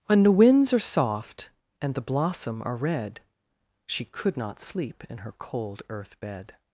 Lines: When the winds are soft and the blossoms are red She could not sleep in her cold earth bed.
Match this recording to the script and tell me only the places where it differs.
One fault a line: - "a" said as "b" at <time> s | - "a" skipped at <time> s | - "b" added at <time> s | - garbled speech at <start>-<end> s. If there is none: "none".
- "blossoms" said as "blossom" at 2.0 s